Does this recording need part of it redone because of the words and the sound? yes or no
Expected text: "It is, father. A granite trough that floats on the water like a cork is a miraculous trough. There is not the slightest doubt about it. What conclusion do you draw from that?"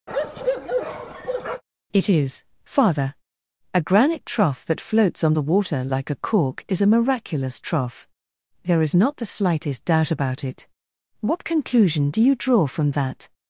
yes